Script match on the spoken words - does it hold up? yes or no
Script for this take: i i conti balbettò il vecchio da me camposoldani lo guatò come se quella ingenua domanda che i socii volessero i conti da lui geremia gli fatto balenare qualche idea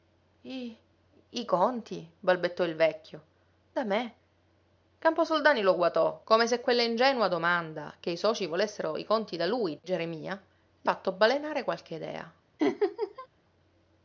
yes